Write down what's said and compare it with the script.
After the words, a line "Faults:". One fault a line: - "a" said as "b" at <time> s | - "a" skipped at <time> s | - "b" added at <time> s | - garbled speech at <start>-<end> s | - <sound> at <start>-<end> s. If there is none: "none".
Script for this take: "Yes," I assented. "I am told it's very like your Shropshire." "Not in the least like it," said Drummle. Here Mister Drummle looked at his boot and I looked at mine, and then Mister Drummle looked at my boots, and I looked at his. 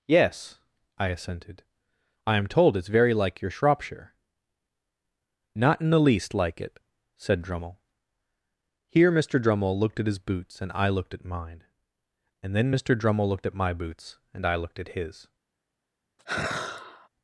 "Yes," I assented. "I am told it's very like your Shropshire." "Not in the least like it," said Drummle. Here Mister Drummle looked at his boots and I looked at mine, and then Mister Drummle looked at my boots, and I looked at his.
Faults:
- "boot" said as "boots" at 10.2 s
- sigh at 16.2-17.1 s